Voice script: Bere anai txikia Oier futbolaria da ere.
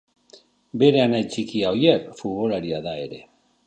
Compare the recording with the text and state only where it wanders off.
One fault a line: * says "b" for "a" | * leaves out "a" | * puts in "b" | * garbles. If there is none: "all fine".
all fine